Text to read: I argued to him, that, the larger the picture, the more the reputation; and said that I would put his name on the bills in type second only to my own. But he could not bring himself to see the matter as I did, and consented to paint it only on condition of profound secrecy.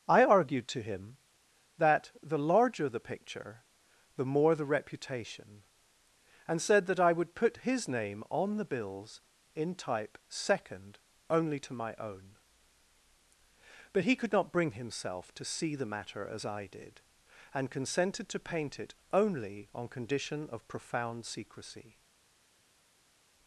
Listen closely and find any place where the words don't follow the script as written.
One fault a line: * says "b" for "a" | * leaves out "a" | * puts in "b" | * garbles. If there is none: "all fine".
all fine